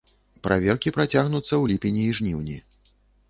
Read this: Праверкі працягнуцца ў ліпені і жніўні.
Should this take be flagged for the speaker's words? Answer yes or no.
no